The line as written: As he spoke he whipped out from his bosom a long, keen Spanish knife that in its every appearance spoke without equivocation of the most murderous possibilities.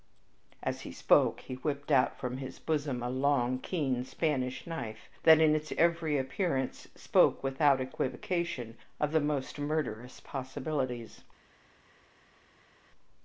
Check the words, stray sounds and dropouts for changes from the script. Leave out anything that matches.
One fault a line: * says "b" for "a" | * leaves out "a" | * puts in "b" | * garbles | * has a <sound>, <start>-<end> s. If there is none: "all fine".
all fine